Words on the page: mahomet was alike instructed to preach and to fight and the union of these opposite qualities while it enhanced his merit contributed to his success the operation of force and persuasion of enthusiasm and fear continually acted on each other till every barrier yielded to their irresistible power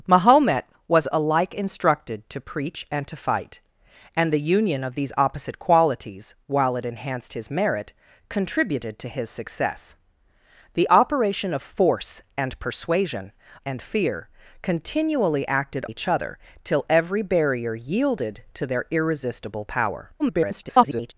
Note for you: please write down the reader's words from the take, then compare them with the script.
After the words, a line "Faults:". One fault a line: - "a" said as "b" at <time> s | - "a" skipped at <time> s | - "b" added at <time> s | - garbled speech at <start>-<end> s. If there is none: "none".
mahomet was alike instructed to preach and to fight and the union of these opposite qualities while it enhanced his merit contributed to his success the operation of force and persuasion and fear continually acted each other till every barrier yielded to their irresistible power [garbled]
Faults:
- "of enthusiasm" skipped at 13.3 s
- "on" skipped at 15.8 s
- garbled speech at 20.2-21.1 s